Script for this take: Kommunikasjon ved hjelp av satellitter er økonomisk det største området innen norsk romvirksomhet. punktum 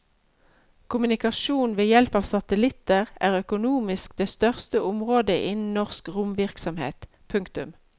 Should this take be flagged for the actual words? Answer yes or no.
no